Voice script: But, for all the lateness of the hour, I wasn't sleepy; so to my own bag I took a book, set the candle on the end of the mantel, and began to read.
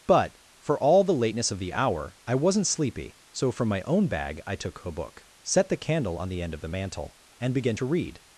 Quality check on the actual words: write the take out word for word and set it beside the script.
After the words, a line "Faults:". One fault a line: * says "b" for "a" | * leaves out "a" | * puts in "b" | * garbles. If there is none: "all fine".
But, for all the lateness of the hour, I wasn't sleepy; so from my own bag I took a book, set the candle on the end of the mantel, and began to read.
Faults:
* says "from" for "to"